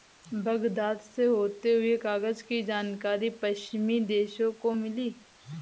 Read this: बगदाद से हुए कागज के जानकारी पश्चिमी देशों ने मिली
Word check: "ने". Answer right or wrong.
wrong